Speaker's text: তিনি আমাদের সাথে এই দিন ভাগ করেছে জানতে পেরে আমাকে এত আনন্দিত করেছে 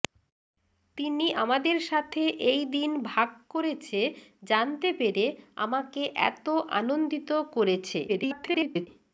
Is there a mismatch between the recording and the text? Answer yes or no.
yes